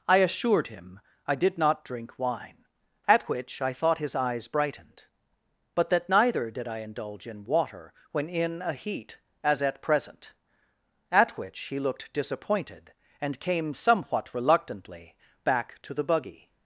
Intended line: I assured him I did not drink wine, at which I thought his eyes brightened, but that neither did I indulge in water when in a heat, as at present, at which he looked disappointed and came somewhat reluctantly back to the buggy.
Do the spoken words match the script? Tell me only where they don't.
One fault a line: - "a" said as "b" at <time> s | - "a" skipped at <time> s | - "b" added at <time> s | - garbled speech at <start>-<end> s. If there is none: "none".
none